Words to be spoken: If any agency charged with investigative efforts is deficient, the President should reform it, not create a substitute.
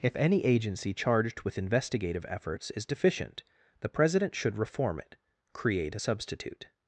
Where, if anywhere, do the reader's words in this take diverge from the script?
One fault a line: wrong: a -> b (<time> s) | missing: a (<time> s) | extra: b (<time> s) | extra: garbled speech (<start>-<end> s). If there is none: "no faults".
missing: not (5.2 s)